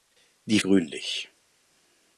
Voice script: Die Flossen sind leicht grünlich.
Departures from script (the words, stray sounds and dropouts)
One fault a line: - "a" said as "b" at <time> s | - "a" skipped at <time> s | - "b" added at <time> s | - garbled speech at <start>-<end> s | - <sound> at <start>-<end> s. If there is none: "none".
- "Flossen sind leicht" skipped at 0.6 s